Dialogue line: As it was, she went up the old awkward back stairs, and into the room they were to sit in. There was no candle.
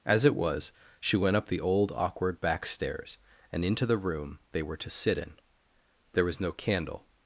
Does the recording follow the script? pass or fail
pass